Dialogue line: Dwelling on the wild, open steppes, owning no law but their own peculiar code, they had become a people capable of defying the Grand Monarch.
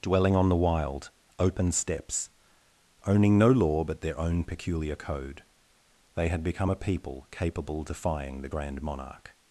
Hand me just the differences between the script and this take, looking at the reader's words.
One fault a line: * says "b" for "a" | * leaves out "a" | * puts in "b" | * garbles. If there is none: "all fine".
* leaves out "of"